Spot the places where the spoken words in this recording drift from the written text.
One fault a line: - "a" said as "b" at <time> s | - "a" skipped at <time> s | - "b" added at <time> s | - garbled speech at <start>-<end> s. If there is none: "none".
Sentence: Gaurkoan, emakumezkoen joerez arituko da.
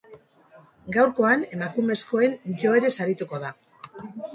none